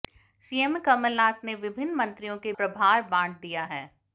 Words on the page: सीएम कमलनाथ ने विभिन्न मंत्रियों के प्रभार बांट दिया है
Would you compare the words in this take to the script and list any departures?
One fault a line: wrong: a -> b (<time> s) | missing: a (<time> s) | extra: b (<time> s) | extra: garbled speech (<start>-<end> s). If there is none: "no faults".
no faults